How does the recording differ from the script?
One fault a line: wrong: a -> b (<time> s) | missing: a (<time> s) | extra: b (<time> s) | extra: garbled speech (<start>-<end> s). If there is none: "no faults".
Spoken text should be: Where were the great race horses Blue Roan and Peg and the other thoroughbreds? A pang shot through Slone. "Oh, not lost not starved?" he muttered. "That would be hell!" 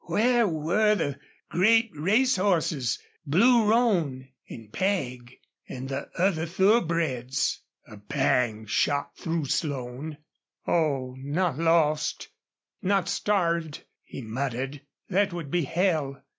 no faults